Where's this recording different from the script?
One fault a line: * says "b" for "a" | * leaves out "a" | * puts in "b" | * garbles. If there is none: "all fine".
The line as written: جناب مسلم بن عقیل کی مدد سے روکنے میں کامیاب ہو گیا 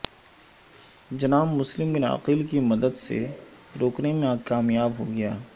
all fine